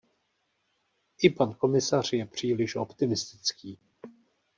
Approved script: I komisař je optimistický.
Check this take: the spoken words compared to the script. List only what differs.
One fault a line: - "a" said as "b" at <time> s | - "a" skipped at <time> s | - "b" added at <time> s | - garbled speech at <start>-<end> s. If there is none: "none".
- "pan" added at 1.3 s
- "příliš" added at 2.2 s